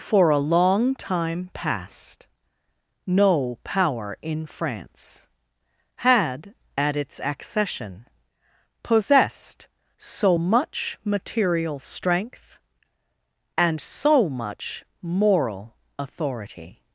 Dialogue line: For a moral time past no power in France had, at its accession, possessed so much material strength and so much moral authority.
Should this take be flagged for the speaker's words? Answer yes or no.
yes